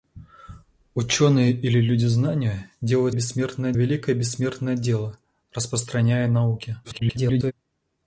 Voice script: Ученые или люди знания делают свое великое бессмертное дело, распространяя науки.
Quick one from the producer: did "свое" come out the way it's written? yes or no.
no